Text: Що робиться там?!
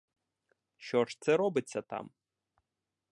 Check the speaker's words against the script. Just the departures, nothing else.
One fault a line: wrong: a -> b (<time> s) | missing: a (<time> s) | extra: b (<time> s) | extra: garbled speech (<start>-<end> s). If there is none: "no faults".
extra: ж це (1.1 s)